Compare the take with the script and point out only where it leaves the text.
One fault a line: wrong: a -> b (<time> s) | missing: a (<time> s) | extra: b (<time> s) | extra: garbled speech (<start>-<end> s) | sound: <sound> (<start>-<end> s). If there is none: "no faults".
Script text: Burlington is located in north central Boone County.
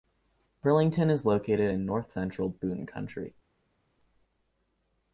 no faults